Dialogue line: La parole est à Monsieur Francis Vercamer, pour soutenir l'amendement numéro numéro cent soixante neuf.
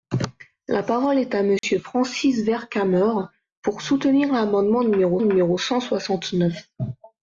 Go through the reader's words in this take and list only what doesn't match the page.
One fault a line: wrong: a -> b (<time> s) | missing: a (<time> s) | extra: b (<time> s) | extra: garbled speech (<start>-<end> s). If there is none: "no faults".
no faults